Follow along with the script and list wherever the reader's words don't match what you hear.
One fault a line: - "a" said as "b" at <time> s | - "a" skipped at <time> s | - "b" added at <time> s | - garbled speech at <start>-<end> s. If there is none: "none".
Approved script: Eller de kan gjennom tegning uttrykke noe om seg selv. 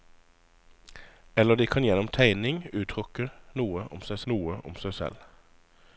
- "noe om seg" added at 4.3 s